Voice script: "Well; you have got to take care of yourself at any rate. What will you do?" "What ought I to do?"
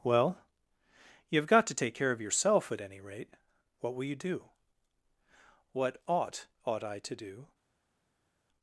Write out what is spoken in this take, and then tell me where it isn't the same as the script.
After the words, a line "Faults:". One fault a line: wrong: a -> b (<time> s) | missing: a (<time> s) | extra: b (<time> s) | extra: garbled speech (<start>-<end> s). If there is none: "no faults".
"Well; you have got to take care of yourself at any rate. What will you do?" "What ought ought I to do?"
Faults:
extra: ought (6.7 s)